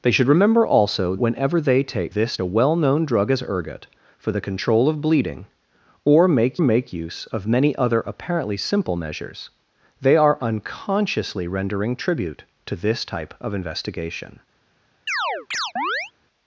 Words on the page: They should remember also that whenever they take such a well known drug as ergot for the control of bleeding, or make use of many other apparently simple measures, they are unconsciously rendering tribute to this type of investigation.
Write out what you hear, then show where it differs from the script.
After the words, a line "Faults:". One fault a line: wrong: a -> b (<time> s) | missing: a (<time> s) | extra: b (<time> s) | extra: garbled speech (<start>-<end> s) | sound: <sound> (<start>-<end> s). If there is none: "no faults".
They should remember also whenever they take this a well known drug as ergot for the control of bleeding, or make make use of many other apparently simple measures, they are unconsciously rendering tribute to this type of investigation.
Faults:
missing: that (1.1 s)
wrong: such -> this (2.1 s)
extra: make (6.6 s)
sound: chirp (15.1-16.1 s)